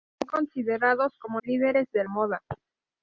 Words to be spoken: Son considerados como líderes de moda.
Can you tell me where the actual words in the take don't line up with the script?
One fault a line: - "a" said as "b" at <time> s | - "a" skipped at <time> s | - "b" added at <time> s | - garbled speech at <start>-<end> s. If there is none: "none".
none